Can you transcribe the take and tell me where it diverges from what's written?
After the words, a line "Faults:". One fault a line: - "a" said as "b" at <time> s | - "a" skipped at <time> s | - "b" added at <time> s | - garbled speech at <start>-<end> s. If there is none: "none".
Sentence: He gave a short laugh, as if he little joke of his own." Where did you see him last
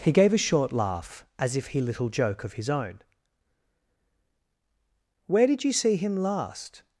He gave a short laugh, as if he little joke of his own." Where did you see him last
Faults:
none